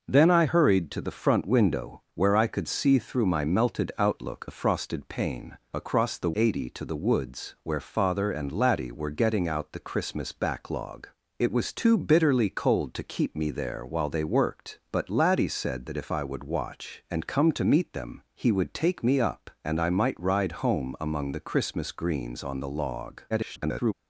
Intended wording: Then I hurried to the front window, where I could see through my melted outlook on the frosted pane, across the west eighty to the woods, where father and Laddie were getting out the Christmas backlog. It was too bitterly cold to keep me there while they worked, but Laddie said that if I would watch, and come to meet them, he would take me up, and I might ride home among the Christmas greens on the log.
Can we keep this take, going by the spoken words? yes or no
no